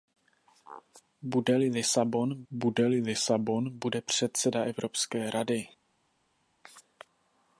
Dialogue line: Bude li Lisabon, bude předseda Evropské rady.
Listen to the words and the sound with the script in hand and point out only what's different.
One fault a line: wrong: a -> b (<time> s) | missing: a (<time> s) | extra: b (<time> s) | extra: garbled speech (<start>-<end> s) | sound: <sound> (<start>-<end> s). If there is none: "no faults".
extra: li Lisabon bude (2.9 s)